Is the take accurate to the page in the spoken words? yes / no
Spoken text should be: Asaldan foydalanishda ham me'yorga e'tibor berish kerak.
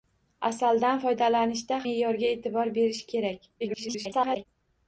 no